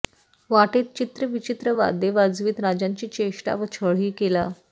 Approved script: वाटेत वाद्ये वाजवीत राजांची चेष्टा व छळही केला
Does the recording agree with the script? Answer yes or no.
no